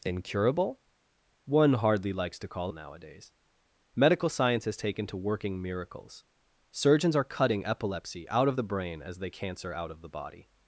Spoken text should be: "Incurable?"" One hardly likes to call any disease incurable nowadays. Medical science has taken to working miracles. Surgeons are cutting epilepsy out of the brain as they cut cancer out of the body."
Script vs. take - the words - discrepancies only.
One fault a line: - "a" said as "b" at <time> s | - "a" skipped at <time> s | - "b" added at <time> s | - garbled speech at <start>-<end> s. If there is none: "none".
- "any disease incurable" skipped at 2.7 s
- "cut" skipped at 9.3 s